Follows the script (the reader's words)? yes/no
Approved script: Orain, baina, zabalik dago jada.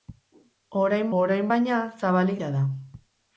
no